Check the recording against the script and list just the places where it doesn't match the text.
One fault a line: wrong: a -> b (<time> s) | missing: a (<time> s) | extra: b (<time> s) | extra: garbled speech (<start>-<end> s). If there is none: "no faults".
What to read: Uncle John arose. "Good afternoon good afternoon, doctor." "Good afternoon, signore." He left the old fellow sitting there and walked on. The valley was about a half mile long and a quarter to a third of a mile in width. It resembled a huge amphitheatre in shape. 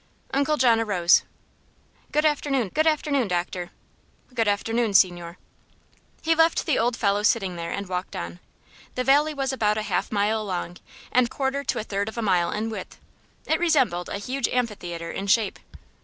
no faults